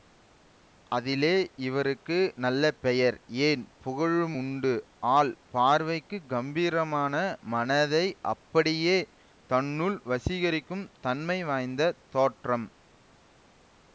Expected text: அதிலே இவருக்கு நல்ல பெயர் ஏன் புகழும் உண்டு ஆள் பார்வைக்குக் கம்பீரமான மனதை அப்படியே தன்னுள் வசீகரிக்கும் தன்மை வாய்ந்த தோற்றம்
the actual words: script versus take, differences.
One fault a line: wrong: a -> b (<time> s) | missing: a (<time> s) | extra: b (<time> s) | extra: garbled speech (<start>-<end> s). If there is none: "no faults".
no faults